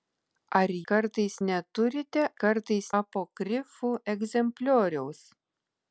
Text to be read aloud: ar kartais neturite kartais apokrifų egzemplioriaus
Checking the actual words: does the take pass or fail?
pass